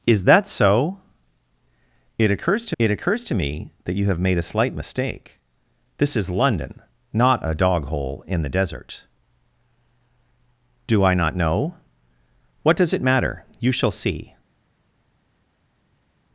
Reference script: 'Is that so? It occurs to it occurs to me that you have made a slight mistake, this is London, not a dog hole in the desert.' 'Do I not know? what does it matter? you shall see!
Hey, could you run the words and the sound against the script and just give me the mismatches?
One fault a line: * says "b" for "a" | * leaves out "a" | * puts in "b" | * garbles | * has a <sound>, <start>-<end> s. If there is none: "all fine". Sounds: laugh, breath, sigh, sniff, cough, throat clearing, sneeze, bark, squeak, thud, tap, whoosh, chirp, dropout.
all fine